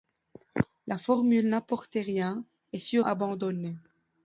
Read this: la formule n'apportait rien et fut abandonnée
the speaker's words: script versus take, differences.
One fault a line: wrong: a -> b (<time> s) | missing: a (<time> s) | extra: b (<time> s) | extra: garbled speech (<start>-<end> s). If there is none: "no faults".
no faults